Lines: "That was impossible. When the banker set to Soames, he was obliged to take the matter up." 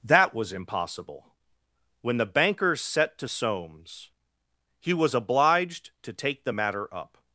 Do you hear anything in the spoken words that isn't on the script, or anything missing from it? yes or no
no